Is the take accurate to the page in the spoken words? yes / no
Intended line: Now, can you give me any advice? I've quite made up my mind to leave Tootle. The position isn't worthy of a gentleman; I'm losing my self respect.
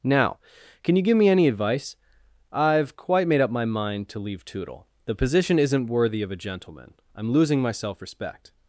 yes